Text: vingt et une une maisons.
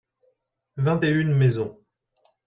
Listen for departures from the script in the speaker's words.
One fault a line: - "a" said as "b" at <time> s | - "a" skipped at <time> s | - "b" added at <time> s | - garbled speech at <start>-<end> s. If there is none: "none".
- "une" skipped at 1.3 s